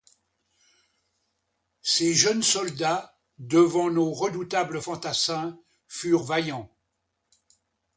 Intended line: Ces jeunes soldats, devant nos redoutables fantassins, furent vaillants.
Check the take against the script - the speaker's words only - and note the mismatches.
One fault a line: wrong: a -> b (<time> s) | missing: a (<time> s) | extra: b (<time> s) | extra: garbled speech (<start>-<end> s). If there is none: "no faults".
no faults